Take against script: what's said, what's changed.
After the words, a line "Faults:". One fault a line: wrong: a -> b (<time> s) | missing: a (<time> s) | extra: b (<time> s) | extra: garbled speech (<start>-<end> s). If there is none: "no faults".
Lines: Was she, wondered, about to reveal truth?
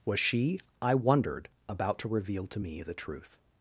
Was she, I wondered, about to reveal to me the truth?
Faults:
extra: I (0.8 s)
extra: to me the (2.5 s)